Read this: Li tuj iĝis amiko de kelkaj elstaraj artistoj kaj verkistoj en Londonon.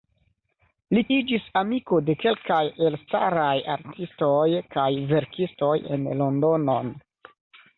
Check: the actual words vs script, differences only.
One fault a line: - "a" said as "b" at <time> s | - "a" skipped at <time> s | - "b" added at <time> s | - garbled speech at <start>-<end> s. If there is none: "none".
- "tuj" skipped at 1.0 s